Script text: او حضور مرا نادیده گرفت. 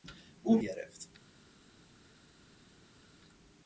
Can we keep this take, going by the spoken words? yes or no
no